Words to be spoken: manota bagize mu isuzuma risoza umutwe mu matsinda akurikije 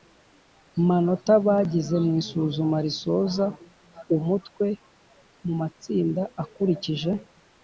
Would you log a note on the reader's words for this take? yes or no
no